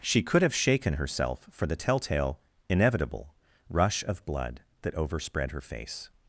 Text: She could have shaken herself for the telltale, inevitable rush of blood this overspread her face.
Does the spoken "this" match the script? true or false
false